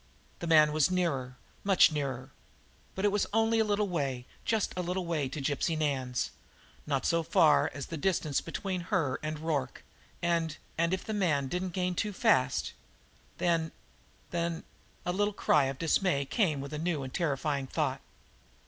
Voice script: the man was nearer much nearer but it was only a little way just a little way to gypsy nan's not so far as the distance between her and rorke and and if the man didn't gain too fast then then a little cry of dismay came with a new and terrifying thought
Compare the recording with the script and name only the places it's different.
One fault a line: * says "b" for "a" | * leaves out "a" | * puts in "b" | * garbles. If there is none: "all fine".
all fine